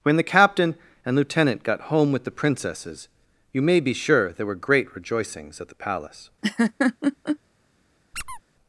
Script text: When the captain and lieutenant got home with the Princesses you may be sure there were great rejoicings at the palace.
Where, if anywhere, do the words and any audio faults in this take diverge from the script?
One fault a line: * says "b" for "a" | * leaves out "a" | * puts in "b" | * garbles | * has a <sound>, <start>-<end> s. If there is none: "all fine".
* has a laugh, 6.4-7.4 s
* has a squeak, 8.1-8.4 s